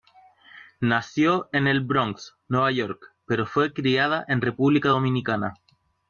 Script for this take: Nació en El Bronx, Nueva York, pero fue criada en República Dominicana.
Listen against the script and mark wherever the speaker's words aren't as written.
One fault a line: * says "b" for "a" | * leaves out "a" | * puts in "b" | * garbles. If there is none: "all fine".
all fine